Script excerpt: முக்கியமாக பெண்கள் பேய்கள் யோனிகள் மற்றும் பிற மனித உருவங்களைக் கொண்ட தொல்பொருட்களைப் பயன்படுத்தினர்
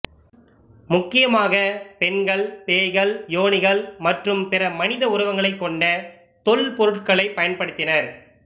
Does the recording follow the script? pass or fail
pass